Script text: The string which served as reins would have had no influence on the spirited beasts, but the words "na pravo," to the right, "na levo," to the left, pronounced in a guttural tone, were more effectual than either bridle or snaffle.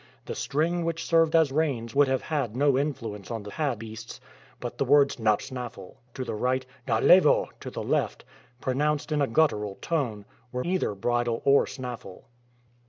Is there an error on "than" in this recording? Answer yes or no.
yes